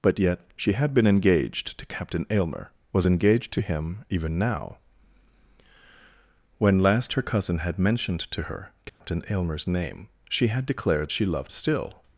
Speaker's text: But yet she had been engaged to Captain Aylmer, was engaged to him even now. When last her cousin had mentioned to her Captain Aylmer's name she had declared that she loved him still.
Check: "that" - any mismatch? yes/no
yes